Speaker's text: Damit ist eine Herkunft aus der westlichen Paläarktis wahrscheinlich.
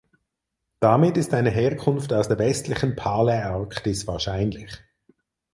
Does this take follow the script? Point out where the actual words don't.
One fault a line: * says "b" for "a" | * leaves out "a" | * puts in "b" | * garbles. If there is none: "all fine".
all fine